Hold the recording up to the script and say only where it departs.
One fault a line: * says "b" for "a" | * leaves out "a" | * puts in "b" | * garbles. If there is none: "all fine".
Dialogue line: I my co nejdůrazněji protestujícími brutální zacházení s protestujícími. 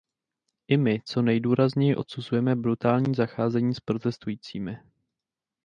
* says "odsuzujeme" for "protestujícími"